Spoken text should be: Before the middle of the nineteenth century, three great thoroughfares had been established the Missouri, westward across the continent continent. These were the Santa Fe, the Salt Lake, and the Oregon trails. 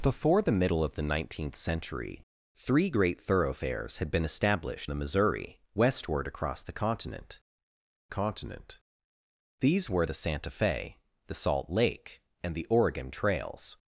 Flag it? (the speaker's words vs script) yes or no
no